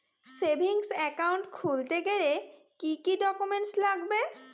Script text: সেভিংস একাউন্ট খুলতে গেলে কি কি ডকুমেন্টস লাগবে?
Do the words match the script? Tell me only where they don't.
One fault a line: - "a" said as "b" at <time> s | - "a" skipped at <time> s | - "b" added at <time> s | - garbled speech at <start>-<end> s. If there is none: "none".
none